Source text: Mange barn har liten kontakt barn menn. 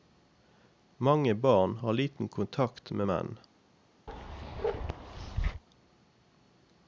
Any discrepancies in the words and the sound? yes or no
yes